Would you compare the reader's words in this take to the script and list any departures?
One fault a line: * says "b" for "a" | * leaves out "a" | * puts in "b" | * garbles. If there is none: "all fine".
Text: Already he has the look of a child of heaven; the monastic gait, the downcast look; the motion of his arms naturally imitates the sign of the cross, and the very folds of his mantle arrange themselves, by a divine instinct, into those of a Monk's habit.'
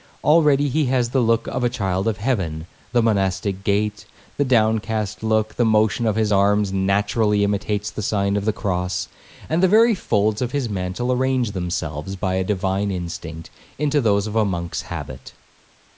all fine